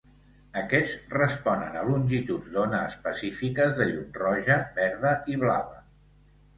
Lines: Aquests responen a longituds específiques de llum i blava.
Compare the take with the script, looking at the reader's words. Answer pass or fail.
fail